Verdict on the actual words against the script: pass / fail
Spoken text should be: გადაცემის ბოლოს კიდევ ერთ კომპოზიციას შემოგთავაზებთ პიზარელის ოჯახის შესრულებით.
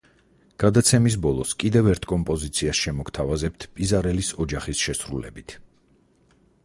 pass